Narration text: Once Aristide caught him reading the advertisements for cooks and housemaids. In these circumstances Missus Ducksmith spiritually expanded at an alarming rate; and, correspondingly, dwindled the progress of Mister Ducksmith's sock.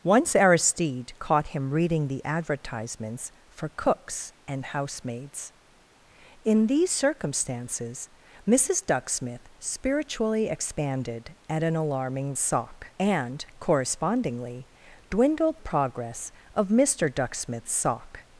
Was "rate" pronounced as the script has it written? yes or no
no